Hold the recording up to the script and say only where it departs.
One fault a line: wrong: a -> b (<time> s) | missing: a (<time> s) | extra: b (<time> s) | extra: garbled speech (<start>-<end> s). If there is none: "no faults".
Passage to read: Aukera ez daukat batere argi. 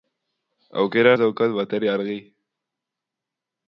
no faults